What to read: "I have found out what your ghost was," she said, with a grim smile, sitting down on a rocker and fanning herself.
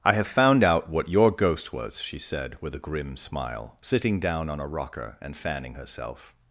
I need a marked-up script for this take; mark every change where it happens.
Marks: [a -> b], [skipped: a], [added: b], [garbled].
"I have found out what your ghost was," she said, with a grim smile, sitting down on a rocker and fanning herself.